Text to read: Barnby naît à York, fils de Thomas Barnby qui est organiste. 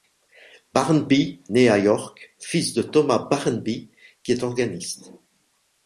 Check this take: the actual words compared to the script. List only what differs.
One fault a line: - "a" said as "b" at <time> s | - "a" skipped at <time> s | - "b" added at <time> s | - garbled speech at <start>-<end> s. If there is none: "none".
none